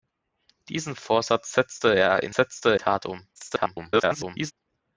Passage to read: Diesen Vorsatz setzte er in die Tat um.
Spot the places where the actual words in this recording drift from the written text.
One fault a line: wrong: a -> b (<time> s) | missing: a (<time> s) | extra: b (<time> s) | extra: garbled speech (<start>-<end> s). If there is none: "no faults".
wrong: die -> setzte (2.3 s)
extra: garbled speech (3.4-4.5 s)